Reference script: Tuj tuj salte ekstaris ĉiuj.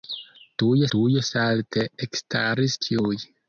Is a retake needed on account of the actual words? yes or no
no